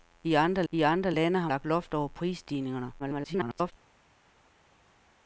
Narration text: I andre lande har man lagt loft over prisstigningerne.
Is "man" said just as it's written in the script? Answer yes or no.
no